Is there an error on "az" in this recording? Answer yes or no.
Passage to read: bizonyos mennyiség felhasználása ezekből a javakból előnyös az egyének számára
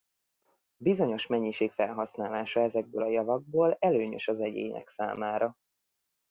no